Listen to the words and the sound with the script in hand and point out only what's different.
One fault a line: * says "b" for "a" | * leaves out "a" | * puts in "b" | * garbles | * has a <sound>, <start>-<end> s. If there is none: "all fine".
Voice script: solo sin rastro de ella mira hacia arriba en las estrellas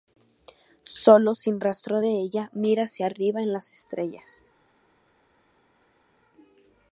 all fine